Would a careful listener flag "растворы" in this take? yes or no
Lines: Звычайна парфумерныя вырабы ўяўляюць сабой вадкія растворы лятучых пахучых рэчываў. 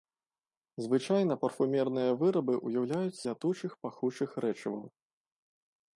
yes